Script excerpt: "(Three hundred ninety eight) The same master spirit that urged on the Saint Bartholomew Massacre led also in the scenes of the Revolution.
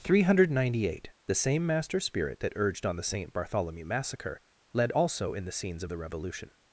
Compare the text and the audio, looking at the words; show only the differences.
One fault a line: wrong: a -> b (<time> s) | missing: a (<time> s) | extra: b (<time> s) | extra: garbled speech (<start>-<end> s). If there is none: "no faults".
no faults